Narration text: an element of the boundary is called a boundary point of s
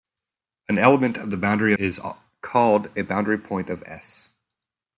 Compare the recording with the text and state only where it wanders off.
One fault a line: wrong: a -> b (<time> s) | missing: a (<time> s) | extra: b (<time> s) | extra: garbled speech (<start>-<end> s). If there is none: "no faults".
no faults